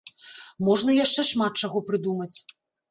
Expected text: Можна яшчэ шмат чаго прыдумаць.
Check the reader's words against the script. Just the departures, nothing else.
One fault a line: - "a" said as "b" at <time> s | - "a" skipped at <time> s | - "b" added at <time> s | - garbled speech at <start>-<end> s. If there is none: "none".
none